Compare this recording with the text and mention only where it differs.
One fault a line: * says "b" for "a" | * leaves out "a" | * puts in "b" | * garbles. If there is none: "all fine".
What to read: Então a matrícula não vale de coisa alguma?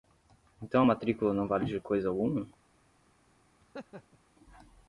all fine